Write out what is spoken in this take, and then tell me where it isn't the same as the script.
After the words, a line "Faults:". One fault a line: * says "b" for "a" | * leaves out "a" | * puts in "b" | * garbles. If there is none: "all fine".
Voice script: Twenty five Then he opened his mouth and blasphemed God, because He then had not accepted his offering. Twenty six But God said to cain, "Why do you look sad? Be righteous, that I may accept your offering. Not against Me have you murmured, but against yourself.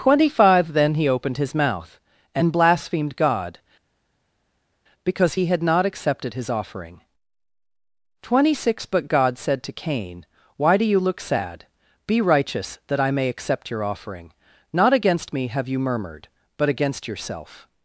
Twenty five Then he opened his mouth and blasphemed God, because He had not accepted his offering. Twenty six But God said to cain, "Why do you look sad? Be righteous, that I may accept your offering. Not against Me have you murmured, but against yourself.
Faults:
* leaves out "then"